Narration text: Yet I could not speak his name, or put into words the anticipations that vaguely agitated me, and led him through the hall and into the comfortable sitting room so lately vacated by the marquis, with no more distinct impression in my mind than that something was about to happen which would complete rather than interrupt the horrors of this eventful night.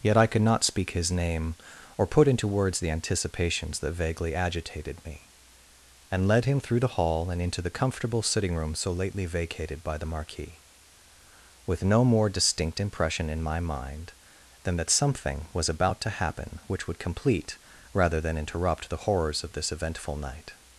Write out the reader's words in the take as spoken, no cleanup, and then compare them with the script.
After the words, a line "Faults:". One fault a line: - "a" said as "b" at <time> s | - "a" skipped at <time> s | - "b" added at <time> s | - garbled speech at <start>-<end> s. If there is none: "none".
Yet I could not speak his name, or put into words the anticipations that vaguely agitated me, and led him through the hall and into the comfortable sitting room so lately vacated by the marquis, with no more distinct impression in my mind than that something was about to happen which would complete rather than interrupt the horrors of this eventful night.
Faults:
none